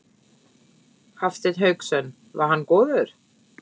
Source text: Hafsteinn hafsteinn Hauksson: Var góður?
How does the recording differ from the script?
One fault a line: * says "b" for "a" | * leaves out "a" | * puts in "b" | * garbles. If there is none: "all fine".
* leaves out "hafsteinn"
* puts in "hann"